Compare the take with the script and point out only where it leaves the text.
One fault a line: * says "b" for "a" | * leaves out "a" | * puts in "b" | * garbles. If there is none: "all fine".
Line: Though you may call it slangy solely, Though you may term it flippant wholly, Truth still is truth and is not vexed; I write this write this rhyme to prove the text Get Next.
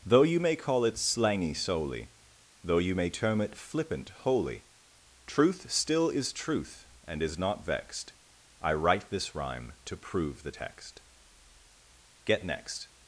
* leaves out "write this"